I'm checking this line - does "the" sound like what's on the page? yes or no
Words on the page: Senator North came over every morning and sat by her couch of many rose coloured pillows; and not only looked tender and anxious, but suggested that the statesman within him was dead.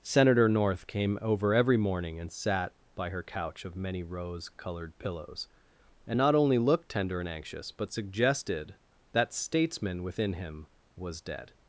no